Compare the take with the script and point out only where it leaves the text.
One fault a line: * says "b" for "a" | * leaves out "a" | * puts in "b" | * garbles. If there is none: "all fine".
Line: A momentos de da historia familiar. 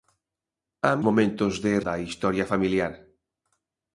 all fine